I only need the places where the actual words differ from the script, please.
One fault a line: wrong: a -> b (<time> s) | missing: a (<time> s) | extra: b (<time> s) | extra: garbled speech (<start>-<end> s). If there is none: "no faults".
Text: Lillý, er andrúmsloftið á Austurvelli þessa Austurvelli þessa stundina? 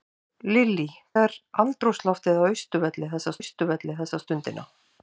no faults